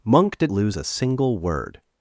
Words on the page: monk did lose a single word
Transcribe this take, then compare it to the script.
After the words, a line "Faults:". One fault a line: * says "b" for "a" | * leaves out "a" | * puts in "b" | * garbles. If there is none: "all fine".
monk did lose a single word
Faults:
all fine